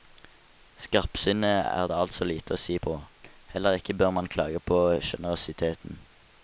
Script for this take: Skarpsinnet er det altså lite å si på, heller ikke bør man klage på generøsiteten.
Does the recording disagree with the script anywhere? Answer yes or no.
no